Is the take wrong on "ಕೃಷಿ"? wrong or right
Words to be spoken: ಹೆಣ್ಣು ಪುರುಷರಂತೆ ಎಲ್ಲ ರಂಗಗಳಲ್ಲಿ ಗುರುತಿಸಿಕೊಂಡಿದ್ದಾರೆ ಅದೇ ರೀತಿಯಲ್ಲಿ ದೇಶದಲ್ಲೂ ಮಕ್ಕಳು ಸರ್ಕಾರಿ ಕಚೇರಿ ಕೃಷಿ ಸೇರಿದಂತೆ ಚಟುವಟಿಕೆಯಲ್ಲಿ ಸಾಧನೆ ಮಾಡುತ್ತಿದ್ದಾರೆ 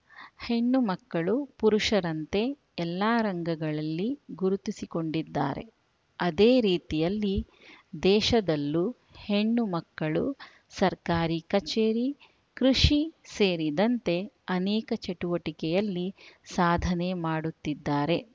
right